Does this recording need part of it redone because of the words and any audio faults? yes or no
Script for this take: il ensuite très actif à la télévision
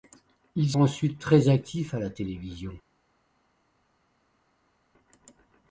no